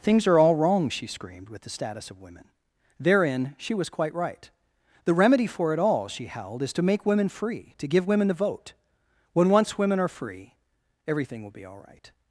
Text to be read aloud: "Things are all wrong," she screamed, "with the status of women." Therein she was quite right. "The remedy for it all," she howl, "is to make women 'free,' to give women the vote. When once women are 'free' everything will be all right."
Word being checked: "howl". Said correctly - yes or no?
no